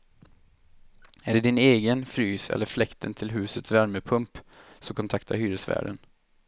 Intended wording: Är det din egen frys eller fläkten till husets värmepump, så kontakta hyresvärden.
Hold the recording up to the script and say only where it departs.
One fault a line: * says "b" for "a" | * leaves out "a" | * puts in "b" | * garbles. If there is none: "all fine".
all fine